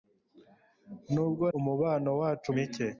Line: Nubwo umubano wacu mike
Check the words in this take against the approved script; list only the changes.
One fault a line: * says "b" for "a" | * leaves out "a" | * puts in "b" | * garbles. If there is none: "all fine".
all fine